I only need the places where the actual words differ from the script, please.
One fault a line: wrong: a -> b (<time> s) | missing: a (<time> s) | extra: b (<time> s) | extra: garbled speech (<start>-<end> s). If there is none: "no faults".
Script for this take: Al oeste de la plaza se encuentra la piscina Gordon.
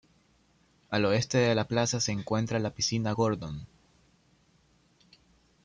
no faults